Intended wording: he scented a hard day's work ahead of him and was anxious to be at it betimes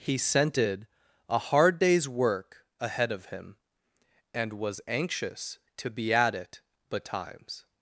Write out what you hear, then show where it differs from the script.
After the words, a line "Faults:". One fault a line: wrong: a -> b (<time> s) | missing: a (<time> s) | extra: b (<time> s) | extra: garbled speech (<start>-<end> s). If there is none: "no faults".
he scented a hard day's work ahead of him and was anxious to be at it betimes
Faults:
no faults